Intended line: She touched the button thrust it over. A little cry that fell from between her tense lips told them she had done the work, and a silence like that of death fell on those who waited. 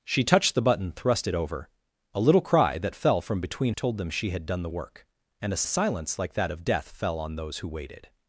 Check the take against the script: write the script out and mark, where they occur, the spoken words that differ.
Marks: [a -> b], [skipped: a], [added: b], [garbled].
She touched the button thrust it over. A little cry that fell from between [skipped: her tense lips] told them she had done the work, and a [added: a] silence like that of death fell on those who waited.